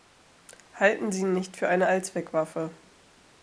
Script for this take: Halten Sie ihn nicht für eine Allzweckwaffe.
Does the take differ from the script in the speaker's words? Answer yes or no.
no